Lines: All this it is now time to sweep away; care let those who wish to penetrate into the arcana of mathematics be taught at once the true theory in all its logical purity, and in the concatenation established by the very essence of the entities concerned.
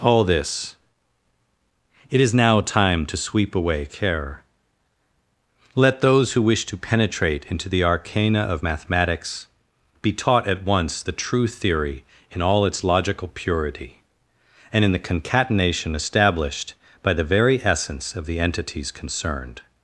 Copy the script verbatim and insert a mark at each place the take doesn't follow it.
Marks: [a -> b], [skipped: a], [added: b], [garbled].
All this it is now time to sweep away; care let those who wish to penetrate into the arcana of mathematics be taught at once the true theory in all its logical purity, and in the concatenation established by the very essence of the entities concerned.